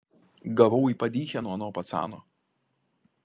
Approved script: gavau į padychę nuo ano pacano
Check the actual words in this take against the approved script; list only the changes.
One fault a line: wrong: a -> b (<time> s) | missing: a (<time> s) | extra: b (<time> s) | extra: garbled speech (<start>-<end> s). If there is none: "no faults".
no faults